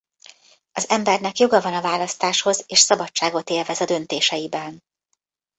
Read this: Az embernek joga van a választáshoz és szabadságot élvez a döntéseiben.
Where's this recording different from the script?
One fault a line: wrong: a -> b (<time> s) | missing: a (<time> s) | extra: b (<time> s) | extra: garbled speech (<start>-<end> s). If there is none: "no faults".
no faults